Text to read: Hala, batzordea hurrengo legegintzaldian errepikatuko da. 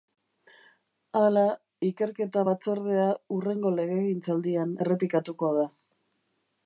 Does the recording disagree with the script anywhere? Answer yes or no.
yes